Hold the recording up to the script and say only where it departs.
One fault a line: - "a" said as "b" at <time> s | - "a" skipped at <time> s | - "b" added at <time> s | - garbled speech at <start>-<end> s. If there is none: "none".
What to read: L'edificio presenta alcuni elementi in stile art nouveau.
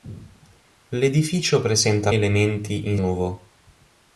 - "alcuni" skipped at 2.1 s
- "stile art" skipped at 3.0 s